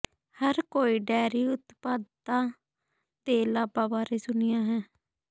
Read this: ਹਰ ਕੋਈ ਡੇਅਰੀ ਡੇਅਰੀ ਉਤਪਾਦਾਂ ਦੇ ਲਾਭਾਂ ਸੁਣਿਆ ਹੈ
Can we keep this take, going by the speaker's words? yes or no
no